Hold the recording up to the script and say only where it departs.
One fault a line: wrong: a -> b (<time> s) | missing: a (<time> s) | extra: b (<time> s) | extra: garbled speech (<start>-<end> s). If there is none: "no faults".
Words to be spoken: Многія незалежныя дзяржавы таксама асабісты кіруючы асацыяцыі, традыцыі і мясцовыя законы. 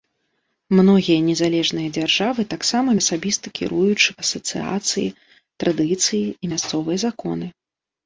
no faults